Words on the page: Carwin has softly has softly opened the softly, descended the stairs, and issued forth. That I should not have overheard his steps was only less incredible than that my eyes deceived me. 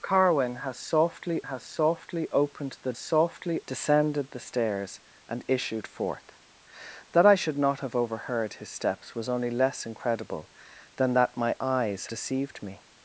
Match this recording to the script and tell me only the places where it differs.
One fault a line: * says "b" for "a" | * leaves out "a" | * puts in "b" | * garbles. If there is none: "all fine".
all fine